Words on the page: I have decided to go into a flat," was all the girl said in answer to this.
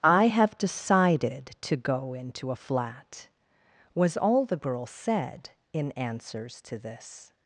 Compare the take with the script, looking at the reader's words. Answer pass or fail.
fail